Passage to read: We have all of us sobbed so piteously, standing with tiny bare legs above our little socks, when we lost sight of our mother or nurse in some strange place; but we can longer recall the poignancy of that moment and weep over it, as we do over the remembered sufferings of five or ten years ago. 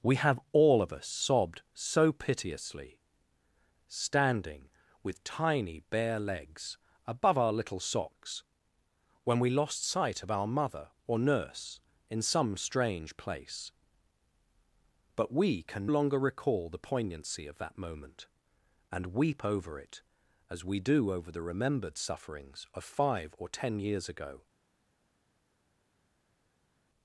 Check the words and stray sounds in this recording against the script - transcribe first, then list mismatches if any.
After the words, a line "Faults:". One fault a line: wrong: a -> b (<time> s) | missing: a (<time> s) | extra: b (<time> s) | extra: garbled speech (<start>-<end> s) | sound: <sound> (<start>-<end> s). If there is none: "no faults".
We have all of us sobbed so piteously, standing with tiny bare legs above our little socks, when we lost sight of our mother or nurse in some strange place; but we can longer recall the poignancy of that moment and weep over it, as we do over the remembered sufferings of five or ten years ago.
Faults:
no faults